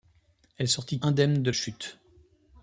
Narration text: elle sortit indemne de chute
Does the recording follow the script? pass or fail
pass